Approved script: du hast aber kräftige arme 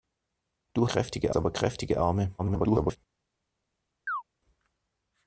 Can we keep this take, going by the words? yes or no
no